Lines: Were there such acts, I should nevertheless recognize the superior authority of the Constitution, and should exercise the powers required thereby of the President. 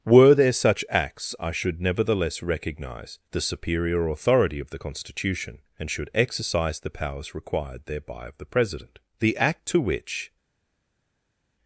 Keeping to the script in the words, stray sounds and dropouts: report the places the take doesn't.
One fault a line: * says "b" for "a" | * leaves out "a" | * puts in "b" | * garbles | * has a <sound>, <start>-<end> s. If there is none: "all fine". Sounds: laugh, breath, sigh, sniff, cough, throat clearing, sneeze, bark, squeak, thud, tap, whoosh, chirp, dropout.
* puts in "The act to which"